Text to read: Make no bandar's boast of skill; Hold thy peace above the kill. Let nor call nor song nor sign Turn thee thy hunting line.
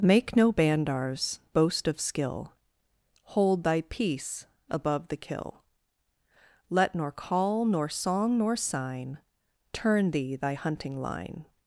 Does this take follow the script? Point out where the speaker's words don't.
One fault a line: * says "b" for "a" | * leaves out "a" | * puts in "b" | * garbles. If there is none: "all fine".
all fine